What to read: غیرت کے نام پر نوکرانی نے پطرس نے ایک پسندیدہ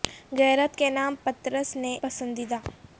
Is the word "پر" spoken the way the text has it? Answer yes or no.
no